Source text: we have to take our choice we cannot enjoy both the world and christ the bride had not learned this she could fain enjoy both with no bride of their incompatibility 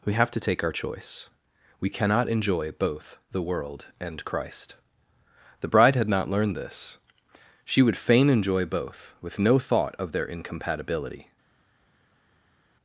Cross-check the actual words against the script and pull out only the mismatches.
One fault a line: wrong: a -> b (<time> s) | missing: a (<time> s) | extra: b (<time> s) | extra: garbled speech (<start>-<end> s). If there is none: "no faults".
wrong: could -> would (7.8 s)
wrong: bride -> thought (9.6 s)